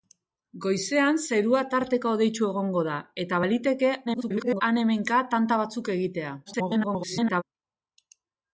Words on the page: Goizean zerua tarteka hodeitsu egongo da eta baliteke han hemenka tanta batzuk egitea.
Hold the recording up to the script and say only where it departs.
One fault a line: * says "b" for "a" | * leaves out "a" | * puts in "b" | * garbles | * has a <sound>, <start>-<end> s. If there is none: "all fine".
* garbles
* garbles